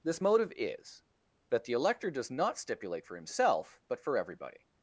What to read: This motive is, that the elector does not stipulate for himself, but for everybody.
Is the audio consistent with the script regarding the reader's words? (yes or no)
yes